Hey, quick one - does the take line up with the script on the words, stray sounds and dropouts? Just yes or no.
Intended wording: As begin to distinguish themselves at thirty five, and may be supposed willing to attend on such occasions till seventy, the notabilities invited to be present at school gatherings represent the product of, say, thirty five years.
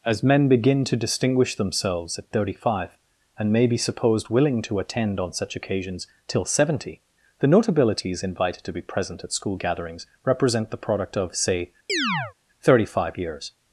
no